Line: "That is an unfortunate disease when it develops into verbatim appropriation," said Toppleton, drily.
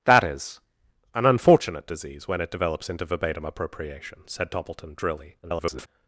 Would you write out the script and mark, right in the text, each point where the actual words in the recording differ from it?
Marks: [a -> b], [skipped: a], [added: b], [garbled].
"That is an unfortunate disease when it develops into verbatim appropriation," said Toppleton, drily. [garbled]